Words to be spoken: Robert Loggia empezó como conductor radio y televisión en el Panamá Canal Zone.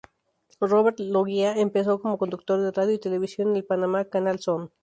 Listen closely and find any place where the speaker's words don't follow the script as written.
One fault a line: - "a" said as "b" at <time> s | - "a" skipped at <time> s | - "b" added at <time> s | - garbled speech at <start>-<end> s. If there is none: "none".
- "de" added at 2.6 s